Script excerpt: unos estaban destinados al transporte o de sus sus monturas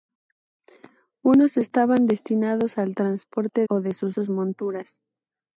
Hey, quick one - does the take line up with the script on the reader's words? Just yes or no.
yes